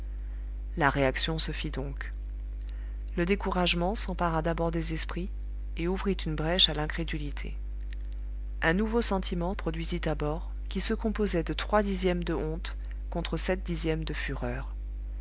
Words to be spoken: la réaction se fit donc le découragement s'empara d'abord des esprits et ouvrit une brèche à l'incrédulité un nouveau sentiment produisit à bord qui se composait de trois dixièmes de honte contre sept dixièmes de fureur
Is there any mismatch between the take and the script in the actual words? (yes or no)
no